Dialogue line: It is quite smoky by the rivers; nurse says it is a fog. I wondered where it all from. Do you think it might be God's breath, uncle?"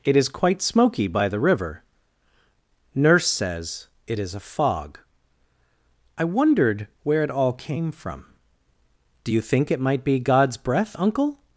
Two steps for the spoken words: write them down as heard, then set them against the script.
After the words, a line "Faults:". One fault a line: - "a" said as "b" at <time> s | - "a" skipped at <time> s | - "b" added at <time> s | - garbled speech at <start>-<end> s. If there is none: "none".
It is quite smoky by the river; nurse says it is a fog. I wondered where it all came from. Do you think it might be God's breath, uncle?"
Faults:
- "rivers" said as "river" at 1.4 s
- "came" added at 7.5 s